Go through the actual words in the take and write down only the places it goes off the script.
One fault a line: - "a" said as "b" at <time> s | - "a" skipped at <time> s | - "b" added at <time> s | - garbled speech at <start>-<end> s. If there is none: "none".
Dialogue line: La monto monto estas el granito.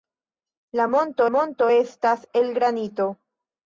none